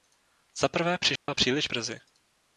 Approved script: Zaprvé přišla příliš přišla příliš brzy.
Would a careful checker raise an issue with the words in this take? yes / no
yes